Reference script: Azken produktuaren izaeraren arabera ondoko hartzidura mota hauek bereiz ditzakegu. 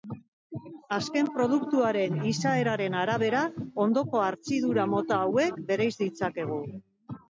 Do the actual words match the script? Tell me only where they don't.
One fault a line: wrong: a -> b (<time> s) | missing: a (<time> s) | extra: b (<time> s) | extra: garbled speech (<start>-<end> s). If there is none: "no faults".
no faults